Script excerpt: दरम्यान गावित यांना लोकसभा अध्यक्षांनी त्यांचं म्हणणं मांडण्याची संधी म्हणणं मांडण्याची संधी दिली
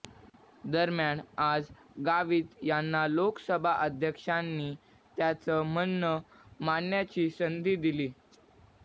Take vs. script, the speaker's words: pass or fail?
fail